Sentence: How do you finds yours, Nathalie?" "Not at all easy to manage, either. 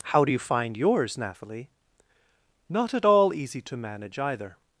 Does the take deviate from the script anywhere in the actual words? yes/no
yes